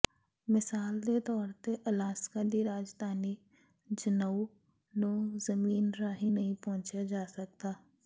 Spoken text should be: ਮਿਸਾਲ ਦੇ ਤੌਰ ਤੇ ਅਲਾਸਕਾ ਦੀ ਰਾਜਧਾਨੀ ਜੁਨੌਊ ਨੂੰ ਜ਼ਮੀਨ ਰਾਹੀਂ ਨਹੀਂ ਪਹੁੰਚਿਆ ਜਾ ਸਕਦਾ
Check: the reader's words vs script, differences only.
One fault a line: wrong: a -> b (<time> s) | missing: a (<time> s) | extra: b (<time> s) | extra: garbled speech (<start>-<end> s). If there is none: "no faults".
no faults